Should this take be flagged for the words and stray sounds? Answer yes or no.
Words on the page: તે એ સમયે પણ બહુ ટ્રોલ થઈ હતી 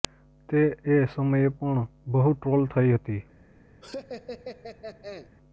yes